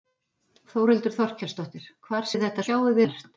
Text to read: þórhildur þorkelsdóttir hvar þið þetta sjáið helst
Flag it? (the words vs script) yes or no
no